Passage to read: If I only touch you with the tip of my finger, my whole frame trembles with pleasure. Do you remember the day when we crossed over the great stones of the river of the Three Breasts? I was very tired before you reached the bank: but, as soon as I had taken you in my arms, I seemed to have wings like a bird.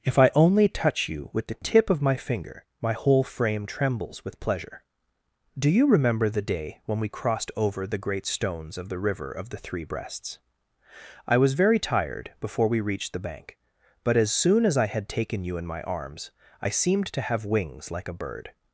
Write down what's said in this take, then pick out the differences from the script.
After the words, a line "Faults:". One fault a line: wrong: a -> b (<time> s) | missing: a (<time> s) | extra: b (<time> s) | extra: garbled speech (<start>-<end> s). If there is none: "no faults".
If I only touch you with the tip of my finger, my whole frame trembles with pleasure. Do you remember the day when we crossed over the great stones of the river of the Three Breasts? I was very tired before we reached the bank: but, as soon as I had taken you in my arms, I seemed to have wings like a bird.
Faults:
wrong: you -> we (12.7 s)